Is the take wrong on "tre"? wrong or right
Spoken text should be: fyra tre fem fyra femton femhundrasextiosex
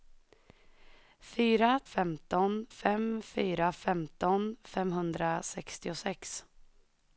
wrong